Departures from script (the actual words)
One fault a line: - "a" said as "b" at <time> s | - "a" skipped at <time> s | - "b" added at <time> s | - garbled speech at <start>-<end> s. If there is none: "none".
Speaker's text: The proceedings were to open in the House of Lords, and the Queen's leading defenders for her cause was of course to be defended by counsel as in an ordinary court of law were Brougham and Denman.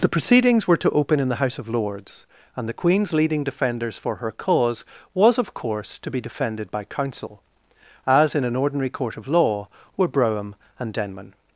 none